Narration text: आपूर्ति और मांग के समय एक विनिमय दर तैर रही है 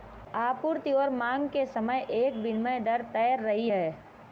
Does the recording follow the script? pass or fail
pass